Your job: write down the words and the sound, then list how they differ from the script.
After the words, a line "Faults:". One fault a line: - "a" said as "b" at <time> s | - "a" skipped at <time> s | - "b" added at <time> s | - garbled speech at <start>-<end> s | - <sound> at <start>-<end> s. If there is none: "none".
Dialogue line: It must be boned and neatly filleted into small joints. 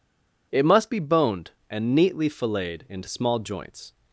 It must be boned and neatly filleted into small joints.
Faults:
none